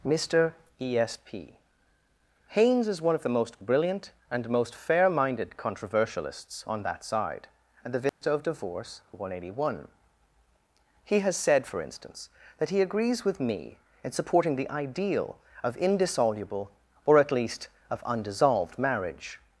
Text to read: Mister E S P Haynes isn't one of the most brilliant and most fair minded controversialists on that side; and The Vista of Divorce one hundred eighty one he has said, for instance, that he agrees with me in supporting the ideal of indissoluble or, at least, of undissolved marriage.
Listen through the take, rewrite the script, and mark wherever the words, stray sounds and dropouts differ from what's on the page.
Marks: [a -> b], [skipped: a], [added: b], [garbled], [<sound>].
Mister E S P Haynes [isn't -> is] one of the most brilliant and most fair minded controversialists on that side; and The Vista [dropout] of Divorce one hundred eighty one he has said, for instance, that he agrees with me in supporting the ideal of indissoluble or, at least, of undissolved marriage.